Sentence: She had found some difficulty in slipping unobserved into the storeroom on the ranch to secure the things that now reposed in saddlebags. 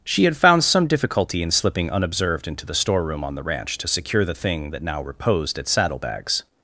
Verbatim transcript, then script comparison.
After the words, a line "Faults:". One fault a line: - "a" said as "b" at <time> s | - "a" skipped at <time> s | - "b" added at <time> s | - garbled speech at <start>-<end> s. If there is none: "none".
She had found some difficulty in slipping unobserved into the storeroom on the ranch to secure the thing that now reposed at saddlebags.
Faults:
- "things" said as "thing" at 4.3 s
- "in" said as "at" at 5.6 s